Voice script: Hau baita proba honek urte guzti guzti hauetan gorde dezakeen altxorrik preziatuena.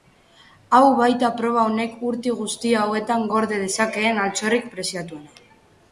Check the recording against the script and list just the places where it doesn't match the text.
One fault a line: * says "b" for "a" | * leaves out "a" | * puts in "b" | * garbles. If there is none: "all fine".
* leaves out "guzti"